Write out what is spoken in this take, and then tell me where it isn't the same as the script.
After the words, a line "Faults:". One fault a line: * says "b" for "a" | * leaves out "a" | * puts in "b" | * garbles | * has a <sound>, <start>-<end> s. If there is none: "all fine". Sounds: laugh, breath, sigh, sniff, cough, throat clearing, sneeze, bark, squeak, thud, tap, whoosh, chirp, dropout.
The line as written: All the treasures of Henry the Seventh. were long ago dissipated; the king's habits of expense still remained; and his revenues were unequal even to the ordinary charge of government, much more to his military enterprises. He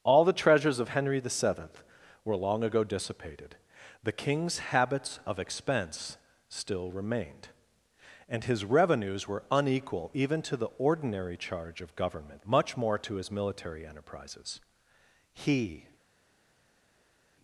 All the treasures of Henry the Seventh. were long ago dissipated; the king's habits of expense still remained; and his revenues were unequal even to the ordinary charge of government, much more to his military enterprises. He
Faults:
all fine